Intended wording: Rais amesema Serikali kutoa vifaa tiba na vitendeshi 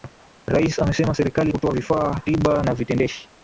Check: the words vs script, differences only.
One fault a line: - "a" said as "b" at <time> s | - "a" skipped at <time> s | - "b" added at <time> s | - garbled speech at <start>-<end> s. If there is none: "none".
none